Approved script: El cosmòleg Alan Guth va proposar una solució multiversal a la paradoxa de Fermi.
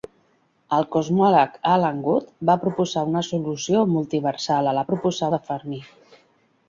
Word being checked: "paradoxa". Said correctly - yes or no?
no